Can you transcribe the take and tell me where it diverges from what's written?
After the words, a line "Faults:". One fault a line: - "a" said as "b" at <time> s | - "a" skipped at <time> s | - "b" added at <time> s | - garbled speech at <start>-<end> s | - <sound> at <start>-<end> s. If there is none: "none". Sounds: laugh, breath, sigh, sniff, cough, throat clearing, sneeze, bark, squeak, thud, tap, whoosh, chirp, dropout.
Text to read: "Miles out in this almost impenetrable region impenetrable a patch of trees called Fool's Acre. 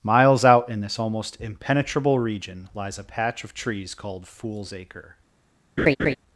"Miles out in this almost impenetrable region lies a patch of trees called Fool's Acre.
Faults:
- "impenetrable" said as "lies" at 2.7 s
- laugh at 5.8-6.2 s